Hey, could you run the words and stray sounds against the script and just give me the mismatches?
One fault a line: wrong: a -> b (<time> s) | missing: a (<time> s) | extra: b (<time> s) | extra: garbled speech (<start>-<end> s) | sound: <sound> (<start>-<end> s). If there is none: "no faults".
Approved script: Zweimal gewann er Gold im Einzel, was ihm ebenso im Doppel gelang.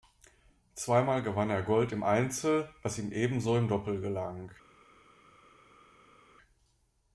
no faults